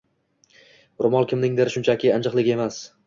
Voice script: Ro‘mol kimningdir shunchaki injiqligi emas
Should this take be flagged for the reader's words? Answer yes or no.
no